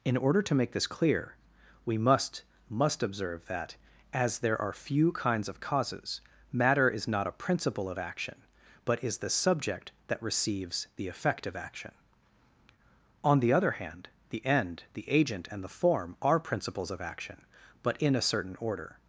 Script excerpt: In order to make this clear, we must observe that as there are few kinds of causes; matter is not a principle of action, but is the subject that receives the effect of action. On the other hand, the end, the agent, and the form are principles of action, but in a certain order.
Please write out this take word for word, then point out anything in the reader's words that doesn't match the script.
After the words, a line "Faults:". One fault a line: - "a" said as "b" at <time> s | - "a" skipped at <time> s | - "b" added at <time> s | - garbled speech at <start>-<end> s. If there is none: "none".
In order to make this clear, we must must observe that as there are few kinds of causes; matter is not a principle of action, but is the subject that receives the effect of action. On the other hand, the end, the agent, and the form are principles of action, but in a certain order.
Faults:
- "must" added at 2.7 s